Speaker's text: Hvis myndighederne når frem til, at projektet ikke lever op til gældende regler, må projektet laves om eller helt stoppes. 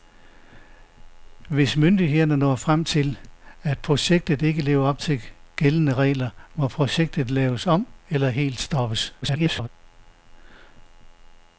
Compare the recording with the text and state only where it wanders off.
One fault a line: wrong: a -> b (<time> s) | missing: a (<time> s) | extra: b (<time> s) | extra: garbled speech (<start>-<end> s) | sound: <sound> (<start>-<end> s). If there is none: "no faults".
extra: garbled speech (9.2-9.7 s)